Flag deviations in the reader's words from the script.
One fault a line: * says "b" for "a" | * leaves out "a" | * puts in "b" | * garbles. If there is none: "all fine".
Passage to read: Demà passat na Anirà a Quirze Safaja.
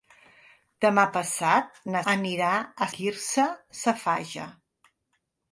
all fine